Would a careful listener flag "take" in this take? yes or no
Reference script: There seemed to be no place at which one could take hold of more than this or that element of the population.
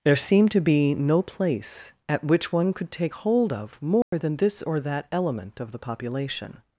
no